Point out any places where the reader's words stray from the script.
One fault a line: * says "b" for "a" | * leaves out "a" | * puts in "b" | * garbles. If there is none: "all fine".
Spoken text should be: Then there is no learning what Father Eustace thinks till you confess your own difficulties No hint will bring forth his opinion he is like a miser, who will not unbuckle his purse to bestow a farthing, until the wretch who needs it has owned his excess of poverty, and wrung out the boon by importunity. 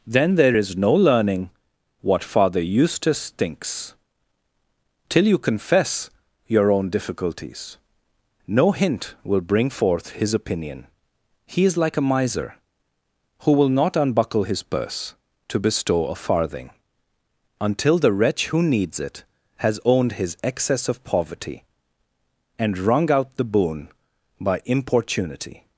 all fine